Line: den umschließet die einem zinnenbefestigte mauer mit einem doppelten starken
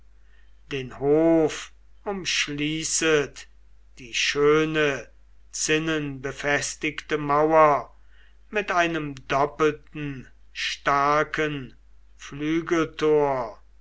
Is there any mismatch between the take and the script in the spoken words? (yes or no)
yes